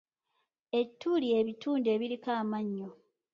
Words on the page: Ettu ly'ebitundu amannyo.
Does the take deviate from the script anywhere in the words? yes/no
yes